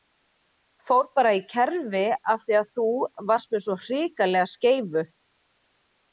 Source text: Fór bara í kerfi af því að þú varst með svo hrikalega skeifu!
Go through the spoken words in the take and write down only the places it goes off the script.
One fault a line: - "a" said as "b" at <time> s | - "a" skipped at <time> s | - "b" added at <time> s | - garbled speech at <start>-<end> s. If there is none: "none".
none